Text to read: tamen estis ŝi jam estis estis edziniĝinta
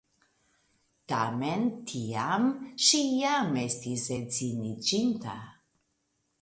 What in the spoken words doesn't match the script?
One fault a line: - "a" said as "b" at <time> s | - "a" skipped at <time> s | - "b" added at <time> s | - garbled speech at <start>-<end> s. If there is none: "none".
- "estis" said as "tiam" at 1.9 s
- "estis" skipped at 4.1 s